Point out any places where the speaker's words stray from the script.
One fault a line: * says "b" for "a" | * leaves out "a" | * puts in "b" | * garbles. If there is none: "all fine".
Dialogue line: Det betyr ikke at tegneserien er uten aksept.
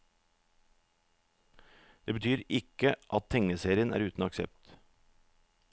all fine